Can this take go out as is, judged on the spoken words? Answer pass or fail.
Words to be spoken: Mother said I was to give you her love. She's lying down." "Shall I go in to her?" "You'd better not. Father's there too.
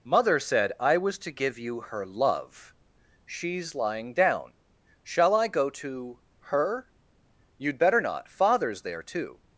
fail